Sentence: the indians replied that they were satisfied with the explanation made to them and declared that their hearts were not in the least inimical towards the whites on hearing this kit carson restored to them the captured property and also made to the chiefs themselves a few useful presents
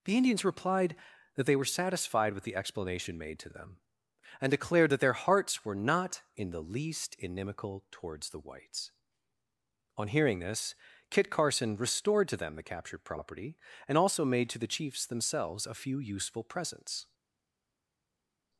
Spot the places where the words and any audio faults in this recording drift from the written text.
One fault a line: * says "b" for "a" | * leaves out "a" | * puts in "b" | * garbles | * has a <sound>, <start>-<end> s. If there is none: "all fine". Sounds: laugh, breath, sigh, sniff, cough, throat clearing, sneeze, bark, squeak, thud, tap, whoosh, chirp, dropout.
all fine